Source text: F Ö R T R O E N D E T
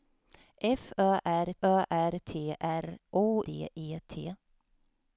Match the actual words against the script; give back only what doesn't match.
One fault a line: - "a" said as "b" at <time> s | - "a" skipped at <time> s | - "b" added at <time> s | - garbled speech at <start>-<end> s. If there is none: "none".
- "Ö R" added at 1.6 s
- "E N" skipped at 3.4 s